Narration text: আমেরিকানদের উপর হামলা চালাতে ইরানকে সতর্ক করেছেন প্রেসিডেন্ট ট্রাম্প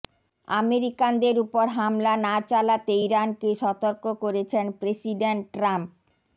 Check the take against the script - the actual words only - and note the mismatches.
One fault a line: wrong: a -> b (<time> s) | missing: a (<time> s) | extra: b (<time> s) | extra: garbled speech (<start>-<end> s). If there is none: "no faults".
extra: না (2.2 s)